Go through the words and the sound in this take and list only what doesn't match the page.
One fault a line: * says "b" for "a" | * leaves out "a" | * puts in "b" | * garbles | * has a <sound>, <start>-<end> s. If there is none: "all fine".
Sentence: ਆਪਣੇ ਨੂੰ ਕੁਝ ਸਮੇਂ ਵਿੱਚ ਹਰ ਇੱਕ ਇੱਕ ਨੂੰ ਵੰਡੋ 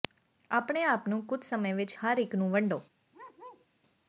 * puts in "ਆਪ"
* leaves out "ਇੱਕ"
* has a bark, 3.1-3.7 s